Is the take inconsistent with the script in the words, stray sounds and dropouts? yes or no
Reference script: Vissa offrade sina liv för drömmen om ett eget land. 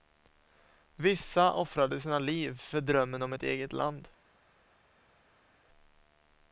no